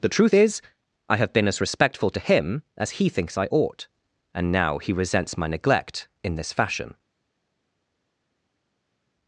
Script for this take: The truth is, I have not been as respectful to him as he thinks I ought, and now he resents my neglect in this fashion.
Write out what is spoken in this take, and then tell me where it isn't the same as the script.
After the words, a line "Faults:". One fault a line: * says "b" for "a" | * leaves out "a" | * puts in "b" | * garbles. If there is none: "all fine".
The truth is, I have been as respectful to him as he thinks I ought, and now he resents my neglect in this fashion.
Faults:
* leaves out "not"